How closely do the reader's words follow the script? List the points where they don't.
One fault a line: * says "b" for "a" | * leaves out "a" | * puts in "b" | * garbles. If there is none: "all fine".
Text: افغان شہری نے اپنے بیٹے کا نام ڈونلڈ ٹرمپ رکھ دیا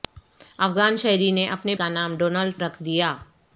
* leaves out "بیٹے"
* leaves out "ٹرمپ"